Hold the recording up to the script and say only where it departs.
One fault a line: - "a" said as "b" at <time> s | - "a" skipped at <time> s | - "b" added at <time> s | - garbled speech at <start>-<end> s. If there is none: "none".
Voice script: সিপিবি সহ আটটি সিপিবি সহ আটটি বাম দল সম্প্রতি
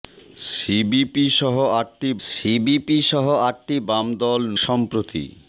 none